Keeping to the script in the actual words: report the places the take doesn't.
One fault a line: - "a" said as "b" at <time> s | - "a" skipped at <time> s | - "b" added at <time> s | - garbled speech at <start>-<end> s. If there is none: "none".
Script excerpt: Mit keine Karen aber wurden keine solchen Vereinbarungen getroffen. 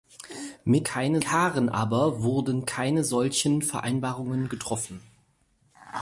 none